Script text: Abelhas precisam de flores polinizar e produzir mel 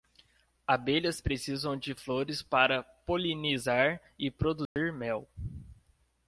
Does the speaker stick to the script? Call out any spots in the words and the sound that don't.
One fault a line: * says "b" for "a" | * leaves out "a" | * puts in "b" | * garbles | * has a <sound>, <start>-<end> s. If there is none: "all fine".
* puts in "para"
* has a dropout, 4.7-4.8 s